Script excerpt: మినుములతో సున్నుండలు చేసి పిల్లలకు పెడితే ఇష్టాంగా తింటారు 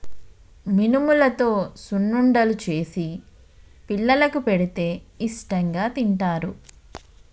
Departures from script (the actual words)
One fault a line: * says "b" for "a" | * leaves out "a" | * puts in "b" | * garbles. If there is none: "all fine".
all fine